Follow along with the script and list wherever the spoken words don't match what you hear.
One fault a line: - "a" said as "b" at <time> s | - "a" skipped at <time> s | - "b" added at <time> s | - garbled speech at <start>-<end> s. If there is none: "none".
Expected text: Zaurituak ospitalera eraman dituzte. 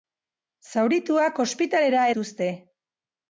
- "eraman" skipped at 2.1 s